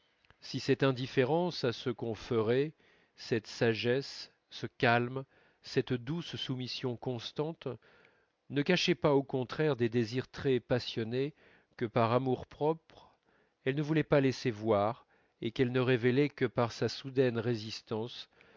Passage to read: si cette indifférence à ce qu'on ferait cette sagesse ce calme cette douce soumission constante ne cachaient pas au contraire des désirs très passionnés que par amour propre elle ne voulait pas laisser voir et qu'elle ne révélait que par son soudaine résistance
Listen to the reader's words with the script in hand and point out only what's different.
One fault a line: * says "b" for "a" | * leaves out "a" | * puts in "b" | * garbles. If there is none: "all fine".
* says "sa" for "son"